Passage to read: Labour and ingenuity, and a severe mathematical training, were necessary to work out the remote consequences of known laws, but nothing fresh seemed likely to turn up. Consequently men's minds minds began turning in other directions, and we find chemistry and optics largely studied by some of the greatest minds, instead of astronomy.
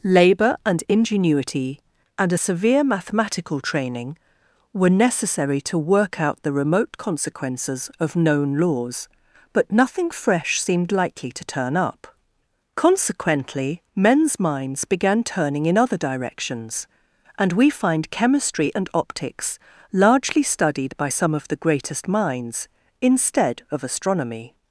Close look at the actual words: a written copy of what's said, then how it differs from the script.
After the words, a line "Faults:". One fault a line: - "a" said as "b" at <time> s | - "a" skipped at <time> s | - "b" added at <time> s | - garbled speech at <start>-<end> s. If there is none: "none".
Labour and ingenuity, and a severe mathematical training, were necessary to work out the remote consequences of known laws, but nothing fresh seemed likely to turn up. Consequently men's minds began turning in other directions, and we find chemistry and optics largely studied by some of the greatest minds, instead of astronomy.
Faults:
- "minds" skipped at 14.8 s